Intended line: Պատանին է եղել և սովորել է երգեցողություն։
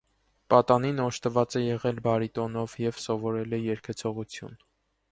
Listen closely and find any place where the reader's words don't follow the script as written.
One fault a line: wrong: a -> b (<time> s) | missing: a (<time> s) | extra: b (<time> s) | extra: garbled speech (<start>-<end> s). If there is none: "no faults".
extra: օժտված (1.0 s)
extra: բարիտոնով (2.1 s)